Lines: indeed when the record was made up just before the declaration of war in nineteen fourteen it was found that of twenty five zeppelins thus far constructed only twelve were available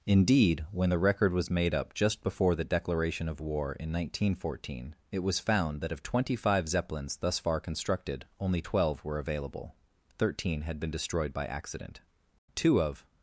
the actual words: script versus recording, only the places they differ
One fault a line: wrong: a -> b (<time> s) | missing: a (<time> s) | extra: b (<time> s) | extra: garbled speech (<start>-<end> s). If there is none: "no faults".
extra: thirteen had been destroyed by accident two of (10.2 s)